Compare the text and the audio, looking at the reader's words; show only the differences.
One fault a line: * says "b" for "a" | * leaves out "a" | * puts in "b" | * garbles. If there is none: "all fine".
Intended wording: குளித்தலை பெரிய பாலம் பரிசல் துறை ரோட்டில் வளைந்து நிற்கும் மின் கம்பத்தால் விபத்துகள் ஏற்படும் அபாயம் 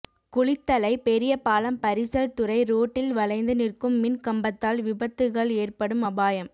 all fine